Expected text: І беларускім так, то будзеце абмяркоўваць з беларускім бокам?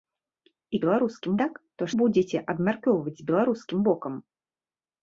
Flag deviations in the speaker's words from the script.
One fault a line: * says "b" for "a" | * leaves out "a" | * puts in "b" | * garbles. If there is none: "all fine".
all fine